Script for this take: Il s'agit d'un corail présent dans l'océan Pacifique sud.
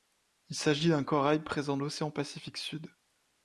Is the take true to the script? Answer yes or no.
no